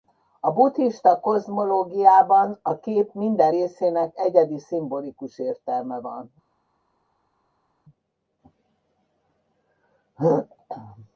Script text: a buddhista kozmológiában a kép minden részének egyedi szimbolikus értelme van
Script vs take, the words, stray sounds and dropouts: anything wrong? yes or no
no